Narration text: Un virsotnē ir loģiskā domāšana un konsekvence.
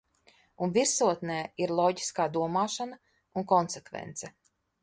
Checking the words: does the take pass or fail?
pass